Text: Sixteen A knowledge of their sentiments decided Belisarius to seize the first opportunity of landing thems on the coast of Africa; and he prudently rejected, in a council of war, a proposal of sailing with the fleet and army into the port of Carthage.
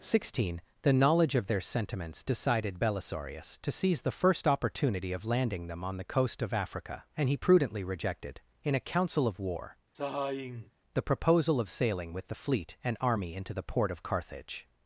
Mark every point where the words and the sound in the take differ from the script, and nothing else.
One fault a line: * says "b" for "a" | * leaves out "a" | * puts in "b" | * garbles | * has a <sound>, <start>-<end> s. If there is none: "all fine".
* says "The" for "A"
* says "them" for "thems"
* has a sigh, 9.9-10.7 s
* says "the" for "a"